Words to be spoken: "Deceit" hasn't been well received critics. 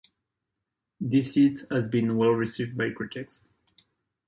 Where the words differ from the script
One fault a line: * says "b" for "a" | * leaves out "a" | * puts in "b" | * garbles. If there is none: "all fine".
* says "has" for "hasn't"
* puts in "by"